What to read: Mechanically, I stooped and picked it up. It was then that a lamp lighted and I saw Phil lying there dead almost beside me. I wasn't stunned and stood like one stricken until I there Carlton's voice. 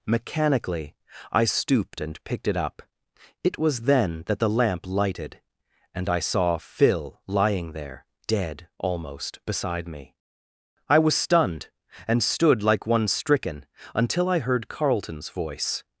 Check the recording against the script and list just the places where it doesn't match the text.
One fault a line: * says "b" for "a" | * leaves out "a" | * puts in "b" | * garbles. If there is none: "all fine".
* says "the" for "a"
* says "was" for "wasn't"
* says "heard" for "there"